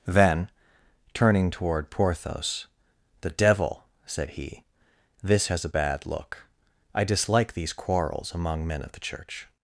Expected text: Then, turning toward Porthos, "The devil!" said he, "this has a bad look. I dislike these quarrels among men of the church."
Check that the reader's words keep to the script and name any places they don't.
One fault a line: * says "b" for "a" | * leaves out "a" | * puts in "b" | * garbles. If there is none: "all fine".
all fine